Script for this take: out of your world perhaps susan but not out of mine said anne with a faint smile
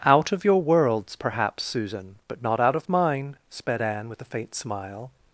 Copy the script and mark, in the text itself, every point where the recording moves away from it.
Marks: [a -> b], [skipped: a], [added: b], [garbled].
out of your [world -> worlds] perhaps susan but not out of mine [said -> sped] anne with a faint smile